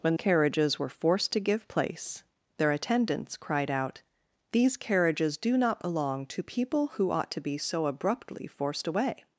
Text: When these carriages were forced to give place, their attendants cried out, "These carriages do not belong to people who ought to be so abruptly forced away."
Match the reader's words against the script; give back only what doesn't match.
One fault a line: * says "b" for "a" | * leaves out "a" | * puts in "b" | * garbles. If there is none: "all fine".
* leaves out "these"